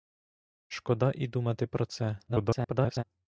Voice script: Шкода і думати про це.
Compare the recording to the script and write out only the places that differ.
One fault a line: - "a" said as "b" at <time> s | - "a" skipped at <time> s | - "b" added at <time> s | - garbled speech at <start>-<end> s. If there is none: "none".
- garbled speech at 2.3-3.0 s